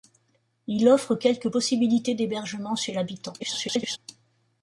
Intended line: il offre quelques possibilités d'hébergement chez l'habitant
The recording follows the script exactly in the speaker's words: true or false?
false